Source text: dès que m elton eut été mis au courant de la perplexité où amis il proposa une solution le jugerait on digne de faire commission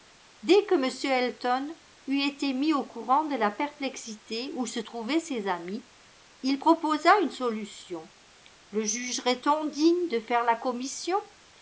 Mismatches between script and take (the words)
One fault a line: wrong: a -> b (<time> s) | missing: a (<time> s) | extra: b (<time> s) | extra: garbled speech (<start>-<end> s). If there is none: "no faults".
extra: se trouvaient ses (4.7 s)
extra: la (10.4 s)